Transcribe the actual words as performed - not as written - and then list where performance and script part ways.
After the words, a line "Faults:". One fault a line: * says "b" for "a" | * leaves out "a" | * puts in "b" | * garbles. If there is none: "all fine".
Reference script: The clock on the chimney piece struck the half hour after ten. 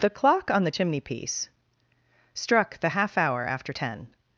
The clock on the chimney piece struck the half hour after ten.
Faults:
all fine